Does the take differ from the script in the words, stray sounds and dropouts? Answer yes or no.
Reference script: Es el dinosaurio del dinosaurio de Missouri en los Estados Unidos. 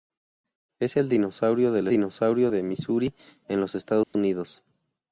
yes